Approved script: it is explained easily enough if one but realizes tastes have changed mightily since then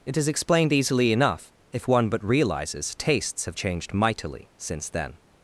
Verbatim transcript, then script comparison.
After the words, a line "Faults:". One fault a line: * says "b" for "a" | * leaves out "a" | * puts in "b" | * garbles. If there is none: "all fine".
it is explained easily enough if one but realizes tastes have changed mightily since then
Faults:
all fine